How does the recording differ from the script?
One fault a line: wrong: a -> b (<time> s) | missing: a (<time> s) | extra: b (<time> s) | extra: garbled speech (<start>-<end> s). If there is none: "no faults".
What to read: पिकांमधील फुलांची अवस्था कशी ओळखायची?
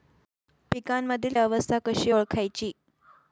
missing: फुलांची (1.3 s)